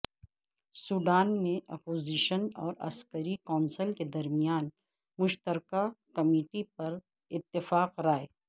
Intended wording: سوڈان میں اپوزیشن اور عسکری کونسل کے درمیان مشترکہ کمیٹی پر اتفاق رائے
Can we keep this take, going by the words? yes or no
yes